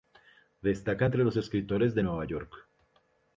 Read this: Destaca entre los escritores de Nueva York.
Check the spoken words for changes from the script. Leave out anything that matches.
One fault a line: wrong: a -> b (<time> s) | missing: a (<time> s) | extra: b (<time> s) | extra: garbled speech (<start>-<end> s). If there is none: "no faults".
no faults